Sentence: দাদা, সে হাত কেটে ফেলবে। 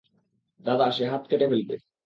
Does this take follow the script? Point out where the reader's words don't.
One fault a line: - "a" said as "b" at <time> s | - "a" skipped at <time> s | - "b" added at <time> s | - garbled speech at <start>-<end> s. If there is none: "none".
none